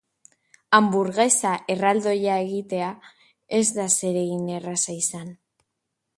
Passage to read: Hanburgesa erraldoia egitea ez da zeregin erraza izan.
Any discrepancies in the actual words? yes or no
no